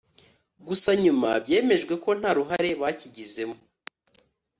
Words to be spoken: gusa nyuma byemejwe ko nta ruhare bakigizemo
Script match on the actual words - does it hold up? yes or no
yes